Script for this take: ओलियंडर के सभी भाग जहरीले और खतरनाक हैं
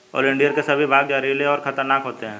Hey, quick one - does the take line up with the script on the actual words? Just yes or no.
no